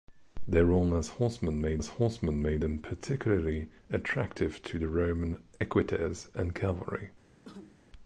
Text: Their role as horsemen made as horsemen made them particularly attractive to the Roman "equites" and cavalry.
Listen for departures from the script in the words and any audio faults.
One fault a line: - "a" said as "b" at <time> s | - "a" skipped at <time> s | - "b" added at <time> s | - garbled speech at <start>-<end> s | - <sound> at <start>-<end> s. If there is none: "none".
- cough at 7.4-7.8 s